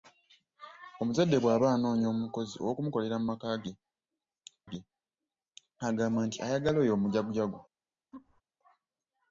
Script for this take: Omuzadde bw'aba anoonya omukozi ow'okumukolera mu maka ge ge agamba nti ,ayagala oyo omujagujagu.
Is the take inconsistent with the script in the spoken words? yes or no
no